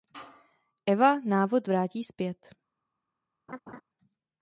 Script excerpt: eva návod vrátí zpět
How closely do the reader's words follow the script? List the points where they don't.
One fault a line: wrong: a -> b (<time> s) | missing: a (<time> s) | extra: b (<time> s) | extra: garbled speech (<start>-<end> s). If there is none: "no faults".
no faults